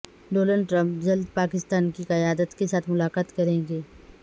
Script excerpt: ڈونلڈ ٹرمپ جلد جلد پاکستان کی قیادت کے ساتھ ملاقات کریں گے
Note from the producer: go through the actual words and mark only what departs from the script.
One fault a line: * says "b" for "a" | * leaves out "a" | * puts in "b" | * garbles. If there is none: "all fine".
* leaves out "جلد"